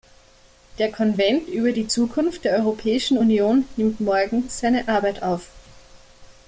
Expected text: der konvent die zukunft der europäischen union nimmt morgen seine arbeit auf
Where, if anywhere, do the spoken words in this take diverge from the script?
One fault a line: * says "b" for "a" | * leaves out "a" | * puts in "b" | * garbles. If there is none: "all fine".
* puts in "über"